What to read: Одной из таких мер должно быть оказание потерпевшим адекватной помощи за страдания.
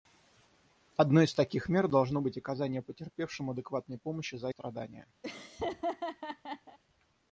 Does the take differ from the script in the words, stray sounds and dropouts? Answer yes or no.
yes